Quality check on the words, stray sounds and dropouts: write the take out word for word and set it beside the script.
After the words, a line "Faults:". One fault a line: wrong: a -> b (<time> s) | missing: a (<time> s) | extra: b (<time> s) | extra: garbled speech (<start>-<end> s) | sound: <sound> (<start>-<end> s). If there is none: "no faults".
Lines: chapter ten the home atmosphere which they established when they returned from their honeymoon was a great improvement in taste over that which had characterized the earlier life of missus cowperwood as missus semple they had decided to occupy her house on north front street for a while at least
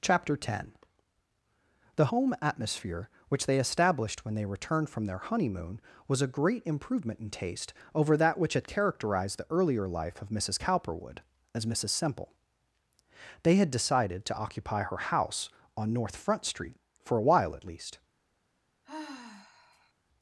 chapter ten the home atmosphere which they established when they returned from their honeymoon was a great improvement in taste over that which had characterized the earlier life of missus cowperwood as missus semple they had decided to occupy her house on north front street for a while at least
Faults:
sound: sigh (18.8-19.9 s)